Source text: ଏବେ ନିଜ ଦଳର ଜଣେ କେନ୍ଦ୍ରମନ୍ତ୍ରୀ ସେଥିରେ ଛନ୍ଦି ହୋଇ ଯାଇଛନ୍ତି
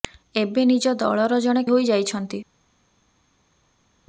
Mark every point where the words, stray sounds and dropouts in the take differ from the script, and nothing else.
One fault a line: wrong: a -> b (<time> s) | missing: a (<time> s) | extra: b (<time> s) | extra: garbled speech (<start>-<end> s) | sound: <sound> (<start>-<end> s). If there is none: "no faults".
missing: କେନ୍ଦ୍ରମନ୍ତ୍ରୀ ସେଥିରେ ଛନ୍ଦି (1.6 s)